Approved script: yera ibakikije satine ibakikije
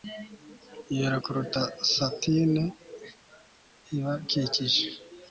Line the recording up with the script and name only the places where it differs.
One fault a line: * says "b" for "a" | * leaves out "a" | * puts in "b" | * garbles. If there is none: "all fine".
* says "kuruta" for "ibakikije"